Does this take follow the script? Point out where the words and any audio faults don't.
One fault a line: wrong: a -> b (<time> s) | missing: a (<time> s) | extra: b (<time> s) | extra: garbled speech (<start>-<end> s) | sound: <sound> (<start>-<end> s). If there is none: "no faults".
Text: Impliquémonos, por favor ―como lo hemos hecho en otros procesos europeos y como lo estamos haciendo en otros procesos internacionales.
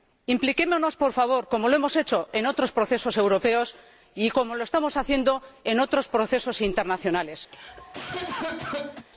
sound: cough (7.5-9.1 s)